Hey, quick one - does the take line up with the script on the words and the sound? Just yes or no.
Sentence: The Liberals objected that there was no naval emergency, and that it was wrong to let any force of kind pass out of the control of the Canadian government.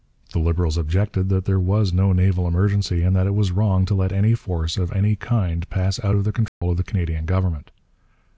no